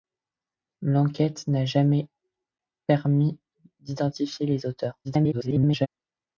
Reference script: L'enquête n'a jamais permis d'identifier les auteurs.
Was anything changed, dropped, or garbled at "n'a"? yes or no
no